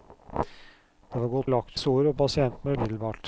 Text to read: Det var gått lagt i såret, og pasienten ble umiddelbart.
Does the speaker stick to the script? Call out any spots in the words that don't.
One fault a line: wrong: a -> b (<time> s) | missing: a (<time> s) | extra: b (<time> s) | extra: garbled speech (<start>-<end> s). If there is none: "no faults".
no faults